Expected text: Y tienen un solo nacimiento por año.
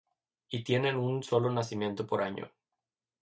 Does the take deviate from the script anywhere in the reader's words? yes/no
no